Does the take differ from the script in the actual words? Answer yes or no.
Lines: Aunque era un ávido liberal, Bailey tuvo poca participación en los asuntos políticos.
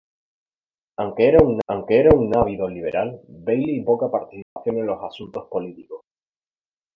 yes